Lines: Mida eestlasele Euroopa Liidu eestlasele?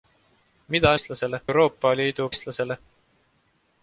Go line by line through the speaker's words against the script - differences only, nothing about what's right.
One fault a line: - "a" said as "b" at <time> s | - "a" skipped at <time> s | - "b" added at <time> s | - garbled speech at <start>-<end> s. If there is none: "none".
none